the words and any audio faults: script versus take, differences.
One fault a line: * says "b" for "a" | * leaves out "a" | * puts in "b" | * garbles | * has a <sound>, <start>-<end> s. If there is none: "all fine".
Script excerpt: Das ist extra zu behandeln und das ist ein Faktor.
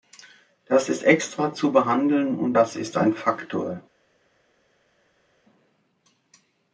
all fine